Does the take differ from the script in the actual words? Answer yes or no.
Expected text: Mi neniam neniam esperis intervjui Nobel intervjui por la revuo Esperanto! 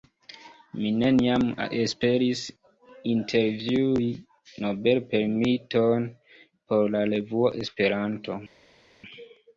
yes